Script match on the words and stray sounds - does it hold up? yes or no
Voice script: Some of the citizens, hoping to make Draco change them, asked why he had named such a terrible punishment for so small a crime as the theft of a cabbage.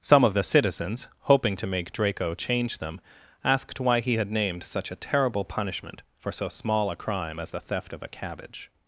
yes